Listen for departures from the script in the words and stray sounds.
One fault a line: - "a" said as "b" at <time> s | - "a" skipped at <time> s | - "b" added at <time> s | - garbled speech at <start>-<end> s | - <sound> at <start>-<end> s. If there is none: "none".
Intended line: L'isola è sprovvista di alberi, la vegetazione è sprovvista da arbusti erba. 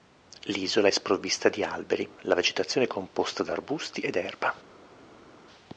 - "sprovvista" said as "composta" at 2.9 s
- "ed" added at 4.0 s